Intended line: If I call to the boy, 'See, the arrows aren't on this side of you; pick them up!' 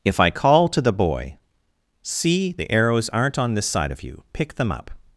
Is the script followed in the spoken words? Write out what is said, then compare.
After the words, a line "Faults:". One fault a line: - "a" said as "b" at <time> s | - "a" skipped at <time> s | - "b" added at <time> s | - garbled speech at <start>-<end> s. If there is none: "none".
If I call to the boy, 'See, the arrows aren't on this side of you; pick them up!'
Faults:
none